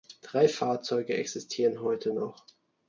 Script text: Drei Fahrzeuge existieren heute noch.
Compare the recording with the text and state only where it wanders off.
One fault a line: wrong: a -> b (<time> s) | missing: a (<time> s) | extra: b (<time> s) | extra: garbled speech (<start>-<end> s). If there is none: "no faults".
no faults